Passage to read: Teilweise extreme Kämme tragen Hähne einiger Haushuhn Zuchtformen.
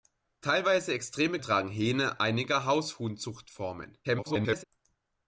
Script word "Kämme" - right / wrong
wrong